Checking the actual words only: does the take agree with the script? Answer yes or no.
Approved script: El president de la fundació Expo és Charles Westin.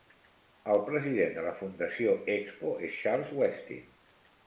yes